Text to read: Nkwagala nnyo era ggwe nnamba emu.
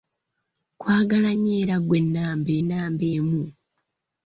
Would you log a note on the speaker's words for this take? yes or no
yes